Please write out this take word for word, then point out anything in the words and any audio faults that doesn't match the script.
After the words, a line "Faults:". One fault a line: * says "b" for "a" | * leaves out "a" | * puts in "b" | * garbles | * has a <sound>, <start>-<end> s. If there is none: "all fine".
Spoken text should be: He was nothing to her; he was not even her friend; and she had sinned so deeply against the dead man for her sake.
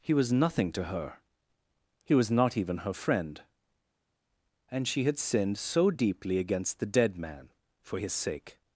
He was nothing to her; he was not even her friend; and she had sinned so deeply against the dead man for his sake.
Faults:
* says "his" for "her"